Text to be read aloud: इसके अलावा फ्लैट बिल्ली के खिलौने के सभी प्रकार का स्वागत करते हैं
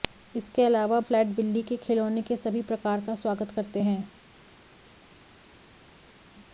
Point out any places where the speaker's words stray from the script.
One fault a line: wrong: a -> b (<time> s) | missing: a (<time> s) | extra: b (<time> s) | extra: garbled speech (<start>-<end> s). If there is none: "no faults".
no faults